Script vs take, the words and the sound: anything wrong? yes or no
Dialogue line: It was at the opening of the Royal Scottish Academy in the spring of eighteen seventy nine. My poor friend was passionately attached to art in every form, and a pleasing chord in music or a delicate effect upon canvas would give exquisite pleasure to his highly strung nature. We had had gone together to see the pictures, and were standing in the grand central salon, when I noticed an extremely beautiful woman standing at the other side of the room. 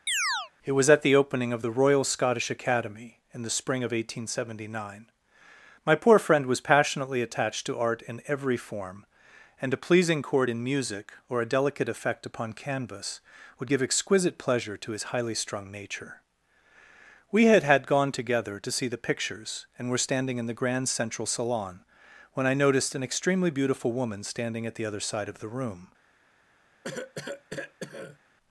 yes